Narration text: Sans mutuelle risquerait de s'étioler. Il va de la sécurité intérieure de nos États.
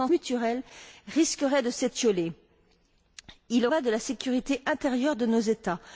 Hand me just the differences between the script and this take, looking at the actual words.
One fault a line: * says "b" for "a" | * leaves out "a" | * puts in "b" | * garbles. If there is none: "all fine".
all fine